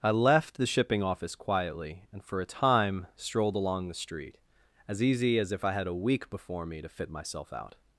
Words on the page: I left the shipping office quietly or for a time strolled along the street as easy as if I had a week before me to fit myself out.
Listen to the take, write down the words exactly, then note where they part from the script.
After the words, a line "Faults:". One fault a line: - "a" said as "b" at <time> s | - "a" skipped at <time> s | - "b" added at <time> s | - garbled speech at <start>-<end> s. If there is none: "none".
I left the shipping office quietly and for a time strolled along the street as easy as if I had a week before me to fit myself out.
Faults:
- "or" said as "and" at 2.1 s